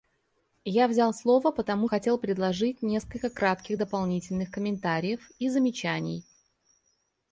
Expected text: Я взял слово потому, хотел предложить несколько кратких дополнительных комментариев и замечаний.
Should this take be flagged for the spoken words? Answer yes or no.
no